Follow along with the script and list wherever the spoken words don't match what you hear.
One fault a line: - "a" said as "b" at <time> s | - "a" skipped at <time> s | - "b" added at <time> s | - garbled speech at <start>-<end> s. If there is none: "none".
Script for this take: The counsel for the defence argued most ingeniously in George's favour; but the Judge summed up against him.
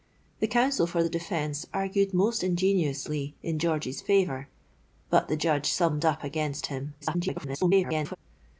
- garbled speech at 7.0-8.2 s